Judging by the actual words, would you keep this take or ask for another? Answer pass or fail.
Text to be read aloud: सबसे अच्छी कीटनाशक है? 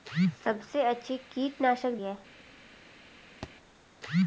pass